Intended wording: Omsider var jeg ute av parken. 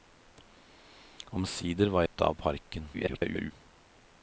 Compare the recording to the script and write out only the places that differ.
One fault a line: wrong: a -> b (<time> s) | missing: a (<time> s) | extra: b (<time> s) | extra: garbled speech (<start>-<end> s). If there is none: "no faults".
missing: jeg (2.1 s)
extra: garbled speech (2.9-3.5 s)